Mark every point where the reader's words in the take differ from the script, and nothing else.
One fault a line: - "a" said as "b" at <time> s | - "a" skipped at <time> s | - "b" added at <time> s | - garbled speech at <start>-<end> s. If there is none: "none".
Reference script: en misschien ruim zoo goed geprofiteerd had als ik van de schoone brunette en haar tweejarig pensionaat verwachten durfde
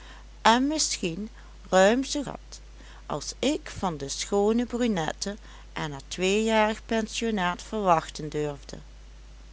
- "goed geprofiteerd" skipped at 2.2 s